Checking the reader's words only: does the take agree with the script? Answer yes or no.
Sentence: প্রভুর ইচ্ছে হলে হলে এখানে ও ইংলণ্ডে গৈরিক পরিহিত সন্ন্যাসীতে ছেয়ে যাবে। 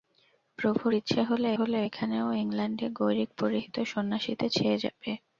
yes